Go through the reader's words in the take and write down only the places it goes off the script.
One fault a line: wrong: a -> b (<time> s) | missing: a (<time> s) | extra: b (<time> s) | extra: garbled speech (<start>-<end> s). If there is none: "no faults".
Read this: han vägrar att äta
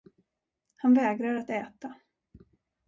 no faults